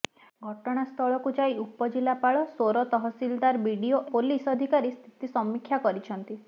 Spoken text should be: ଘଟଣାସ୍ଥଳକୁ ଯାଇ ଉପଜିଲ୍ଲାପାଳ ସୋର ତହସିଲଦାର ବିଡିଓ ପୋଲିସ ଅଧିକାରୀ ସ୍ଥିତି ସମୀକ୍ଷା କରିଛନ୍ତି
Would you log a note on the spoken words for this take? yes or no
no